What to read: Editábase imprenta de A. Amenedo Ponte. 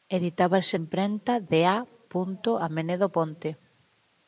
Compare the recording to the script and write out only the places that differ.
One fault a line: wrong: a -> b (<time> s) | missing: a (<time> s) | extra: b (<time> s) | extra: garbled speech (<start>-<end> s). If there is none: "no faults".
no faults